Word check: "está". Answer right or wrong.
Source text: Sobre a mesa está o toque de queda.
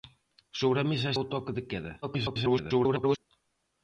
wrong